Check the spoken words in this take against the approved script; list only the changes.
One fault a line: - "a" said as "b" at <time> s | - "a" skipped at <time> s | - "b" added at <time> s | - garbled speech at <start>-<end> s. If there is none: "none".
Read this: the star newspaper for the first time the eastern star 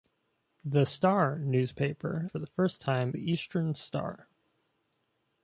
none